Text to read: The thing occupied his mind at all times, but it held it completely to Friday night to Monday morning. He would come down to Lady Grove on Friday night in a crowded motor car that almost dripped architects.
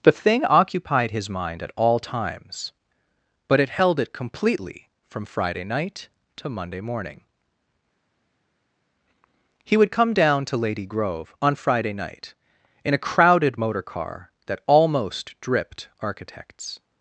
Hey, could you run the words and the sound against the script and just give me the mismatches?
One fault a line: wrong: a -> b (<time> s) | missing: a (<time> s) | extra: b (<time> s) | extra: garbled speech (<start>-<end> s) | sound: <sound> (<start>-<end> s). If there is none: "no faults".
wrong: to -> from (5.1 s)